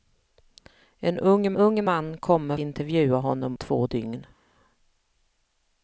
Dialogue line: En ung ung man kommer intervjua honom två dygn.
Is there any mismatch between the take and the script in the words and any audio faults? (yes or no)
no